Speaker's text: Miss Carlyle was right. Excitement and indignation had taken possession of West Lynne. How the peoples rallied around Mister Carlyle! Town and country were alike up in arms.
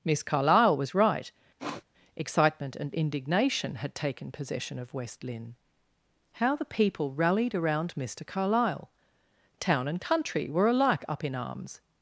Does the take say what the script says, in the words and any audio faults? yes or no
no